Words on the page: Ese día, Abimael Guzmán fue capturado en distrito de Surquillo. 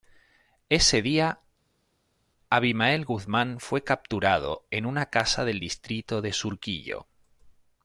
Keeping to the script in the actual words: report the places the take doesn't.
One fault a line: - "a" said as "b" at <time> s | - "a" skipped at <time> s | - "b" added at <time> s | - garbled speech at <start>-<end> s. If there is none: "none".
- "una casa del" added at 4.9 s